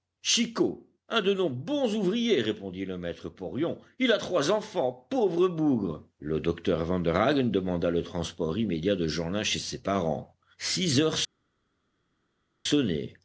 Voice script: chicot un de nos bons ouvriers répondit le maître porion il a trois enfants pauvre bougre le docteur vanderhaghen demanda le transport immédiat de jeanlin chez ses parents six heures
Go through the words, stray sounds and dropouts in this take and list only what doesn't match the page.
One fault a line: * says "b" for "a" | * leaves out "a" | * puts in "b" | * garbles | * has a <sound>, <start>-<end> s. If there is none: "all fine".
all fine